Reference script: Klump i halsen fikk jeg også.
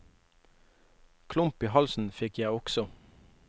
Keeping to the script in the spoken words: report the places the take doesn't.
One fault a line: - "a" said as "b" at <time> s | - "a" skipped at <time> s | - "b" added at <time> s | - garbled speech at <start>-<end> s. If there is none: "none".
none